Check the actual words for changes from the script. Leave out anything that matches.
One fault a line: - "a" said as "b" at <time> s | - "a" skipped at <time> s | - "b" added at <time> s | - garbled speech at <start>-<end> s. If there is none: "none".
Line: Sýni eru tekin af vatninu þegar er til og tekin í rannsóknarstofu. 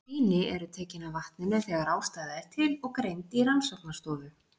- "ástæða" added at 2.0 s
- "tekin" said as "greind" at 3.0 s